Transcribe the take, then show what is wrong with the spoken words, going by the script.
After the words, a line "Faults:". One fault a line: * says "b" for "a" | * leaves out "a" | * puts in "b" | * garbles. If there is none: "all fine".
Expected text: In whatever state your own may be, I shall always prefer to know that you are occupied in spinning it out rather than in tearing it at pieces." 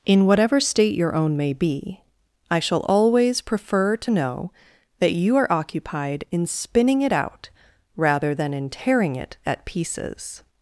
In whatever state your own may be, I shall always prefer to know that you are occupied in spinning it out rather than in tearing it at pieces."
Faults:
all fine